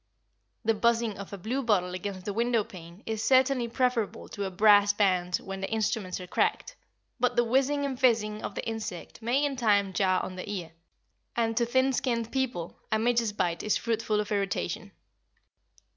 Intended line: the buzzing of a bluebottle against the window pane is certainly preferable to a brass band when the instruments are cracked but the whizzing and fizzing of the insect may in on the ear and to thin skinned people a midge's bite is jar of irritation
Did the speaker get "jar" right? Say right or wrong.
wrong